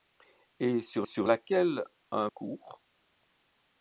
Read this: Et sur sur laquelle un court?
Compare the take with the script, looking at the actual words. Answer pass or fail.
pass